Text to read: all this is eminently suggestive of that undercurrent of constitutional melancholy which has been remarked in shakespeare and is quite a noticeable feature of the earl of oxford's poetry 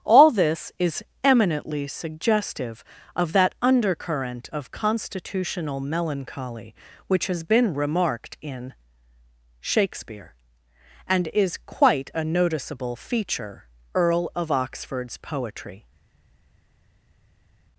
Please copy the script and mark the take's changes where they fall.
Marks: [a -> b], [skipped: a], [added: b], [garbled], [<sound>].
all this is eminently suggestive of that undercurrent of constitutional melancholy which has been remarked in shakespeare and is quite a noticeable feature [skipped: of the] earl of oxford's poetry